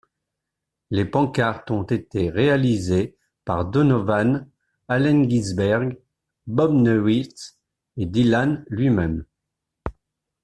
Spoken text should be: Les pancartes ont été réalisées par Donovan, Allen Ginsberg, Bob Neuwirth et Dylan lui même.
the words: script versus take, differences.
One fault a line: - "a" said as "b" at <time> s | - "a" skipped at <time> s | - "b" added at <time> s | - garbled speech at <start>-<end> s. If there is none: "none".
none